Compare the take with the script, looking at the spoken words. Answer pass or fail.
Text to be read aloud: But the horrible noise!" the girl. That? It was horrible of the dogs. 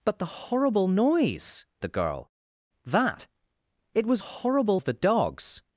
pass